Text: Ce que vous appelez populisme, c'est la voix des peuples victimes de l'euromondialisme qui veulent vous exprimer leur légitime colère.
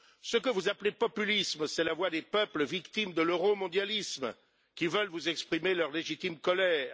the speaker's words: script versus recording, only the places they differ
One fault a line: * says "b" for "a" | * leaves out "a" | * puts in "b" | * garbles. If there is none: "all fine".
all fine